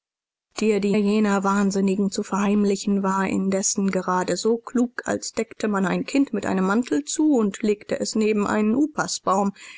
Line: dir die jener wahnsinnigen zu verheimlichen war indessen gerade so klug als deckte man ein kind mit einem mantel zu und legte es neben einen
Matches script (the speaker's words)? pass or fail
pass